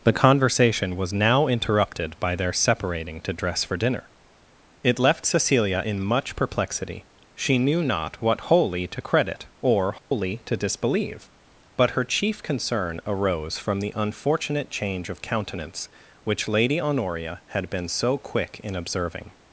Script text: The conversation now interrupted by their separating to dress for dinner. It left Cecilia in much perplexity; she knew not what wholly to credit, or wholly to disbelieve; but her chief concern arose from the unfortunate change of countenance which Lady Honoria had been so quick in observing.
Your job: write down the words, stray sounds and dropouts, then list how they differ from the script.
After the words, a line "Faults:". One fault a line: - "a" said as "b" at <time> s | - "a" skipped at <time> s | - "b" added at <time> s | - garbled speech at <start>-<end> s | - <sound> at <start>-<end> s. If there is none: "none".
The conversation was now interrupted by their separating to dress for dinner. It left Cecilia in much perplexity; she knew not what wholly to credit, or wholly to disbelieve; but her chief concern arose from the unfortunate change of countenance which Lady Honoria had been so quick in observing.
Faults:
- "was" added at 0.9 s
- dropout at 10.0-10.1 s